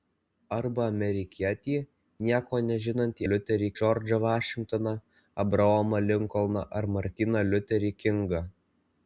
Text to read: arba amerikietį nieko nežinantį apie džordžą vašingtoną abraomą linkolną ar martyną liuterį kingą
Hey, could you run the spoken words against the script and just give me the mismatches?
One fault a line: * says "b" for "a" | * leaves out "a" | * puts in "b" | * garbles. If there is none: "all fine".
* says "liuterį" for "apie"